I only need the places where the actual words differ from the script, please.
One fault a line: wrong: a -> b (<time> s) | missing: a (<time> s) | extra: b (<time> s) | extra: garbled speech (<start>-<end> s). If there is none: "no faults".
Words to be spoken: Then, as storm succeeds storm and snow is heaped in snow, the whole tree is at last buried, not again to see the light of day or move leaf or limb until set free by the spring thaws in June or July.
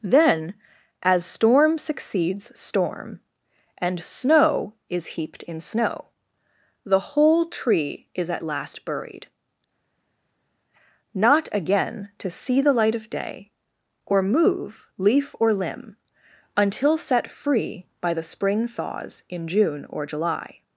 no faults